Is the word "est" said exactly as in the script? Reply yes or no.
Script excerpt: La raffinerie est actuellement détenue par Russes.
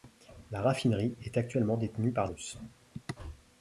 yes